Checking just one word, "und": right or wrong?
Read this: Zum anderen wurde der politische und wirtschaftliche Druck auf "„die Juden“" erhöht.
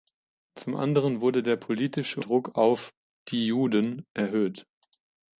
wrong